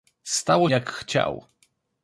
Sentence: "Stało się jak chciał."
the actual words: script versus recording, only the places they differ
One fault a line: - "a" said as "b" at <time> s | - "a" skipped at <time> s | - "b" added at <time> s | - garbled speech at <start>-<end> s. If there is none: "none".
- "się" skipped at 0.7 s